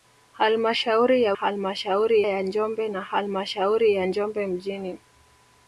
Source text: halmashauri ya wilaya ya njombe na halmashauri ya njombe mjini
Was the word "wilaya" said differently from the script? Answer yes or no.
yes